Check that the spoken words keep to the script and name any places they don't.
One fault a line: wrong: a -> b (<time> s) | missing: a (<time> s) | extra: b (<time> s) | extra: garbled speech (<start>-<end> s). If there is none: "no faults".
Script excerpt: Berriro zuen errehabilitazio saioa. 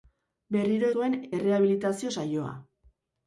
no faults